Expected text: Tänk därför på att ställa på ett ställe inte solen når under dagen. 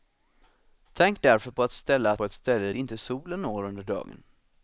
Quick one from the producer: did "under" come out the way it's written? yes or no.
yes